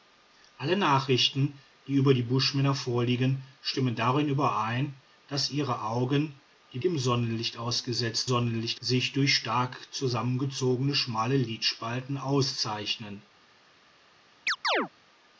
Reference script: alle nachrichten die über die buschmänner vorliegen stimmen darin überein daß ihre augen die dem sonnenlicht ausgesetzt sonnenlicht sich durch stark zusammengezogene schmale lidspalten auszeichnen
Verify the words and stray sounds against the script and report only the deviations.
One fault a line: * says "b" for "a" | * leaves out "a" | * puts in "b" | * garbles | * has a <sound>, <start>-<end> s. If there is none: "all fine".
* has a chirp, 14.5-14.9 s